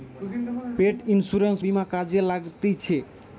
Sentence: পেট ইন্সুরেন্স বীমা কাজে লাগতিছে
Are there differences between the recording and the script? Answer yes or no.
no